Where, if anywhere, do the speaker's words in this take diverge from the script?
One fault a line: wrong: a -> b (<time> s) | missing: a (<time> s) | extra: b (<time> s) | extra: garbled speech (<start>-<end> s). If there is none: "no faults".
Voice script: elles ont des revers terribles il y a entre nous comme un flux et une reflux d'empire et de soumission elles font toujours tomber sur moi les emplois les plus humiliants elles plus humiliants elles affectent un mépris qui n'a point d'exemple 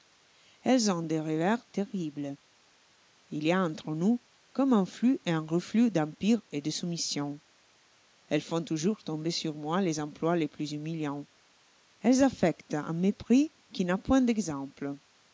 wrong: une -> un (5.3 s)
missing: plus humiliants elles (12.2 s)